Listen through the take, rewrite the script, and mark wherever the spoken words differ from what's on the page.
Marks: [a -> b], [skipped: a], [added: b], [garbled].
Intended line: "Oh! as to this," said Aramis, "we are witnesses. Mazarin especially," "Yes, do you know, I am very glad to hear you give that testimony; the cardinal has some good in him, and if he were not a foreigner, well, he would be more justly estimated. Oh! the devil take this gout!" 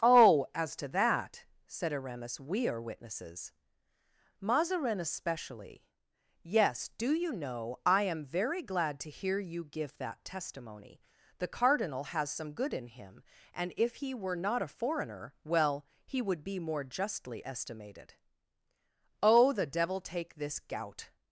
"Oh! as to [this," -> that] said Aramis, "we are witnesses. Mazarin especially," "Yes, do you know, I am very glad to hear you give that testimony; the cardinal has some good in him, and if he were not a foreigner, well, he would be more justly estimated. Oh! the devil take this gout!"